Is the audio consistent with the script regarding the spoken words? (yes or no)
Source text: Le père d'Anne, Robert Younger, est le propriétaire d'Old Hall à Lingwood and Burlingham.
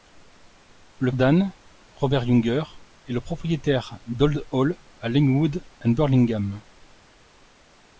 no